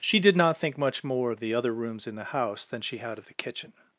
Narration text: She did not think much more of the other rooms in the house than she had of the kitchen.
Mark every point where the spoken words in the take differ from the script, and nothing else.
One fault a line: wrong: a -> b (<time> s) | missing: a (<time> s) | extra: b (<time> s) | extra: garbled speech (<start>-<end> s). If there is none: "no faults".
no faults